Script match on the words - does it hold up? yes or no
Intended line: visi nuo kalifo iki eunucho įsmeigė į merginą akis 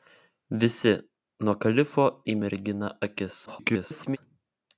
no